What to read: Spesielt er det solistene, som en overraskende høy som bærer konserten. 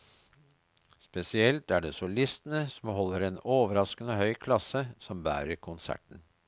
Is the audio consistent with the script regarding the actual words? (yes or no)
no